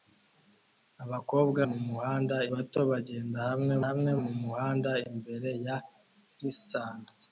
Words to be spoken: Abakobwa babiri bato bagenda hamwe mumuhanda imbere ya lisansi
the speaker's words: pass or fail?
fail